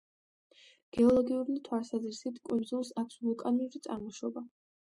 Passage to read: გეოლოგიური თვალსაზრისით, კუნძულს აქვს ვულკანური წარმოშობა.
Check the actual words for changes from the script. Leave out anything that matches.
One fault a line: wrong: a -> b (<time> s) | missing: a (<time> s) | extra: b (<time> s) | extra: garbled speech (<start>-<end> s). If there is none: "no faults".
no faults